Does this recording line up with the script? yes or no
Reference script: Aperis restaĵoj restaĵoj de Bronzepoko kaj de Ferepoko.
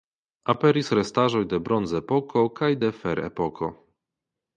no